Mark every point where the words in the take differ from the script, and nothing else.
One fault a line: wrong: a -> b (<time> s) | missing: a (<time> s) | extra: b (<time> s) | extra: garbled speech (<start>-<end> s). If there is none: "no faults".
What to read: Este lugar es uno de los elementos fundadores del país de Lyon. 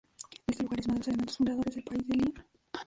no faults